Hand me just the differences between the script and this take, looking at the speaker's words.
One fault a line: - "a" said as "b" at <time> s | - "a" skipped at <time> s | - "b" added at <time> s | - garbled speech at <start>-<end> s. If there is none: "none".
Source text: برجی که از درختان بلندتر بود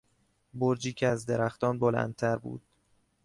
none